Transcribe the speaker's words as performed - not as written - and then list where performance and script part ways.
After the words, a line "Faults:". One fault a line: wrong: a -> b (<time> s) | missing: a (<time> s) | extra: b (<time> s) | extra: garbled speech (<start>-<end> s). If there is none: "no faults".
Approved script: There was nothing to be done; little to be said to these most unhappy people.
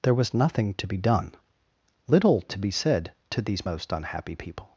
There was nothing to be done; little to be said to these most unhappy people.
Faults:
no faults